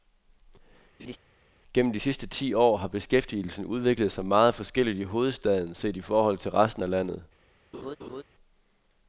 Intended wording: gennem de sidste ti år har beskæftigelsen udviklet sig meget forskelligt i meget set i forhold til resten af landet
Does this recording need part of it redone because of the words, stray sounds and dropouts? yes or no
yes